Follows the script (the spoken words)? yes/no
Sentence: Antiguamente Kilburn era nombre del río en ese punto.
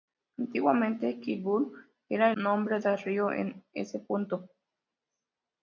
yes